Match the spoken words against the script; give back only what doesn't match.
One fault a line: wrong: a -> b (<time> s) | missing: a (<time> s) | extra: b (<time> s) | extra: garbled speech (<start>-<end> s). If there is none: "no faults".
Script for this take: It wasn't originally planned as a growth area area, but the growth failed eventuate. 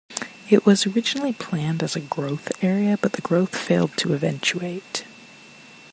wrong: wasn't -> was (0.7 s)
missing: area (3.0 s)
extra: to (4.0 s)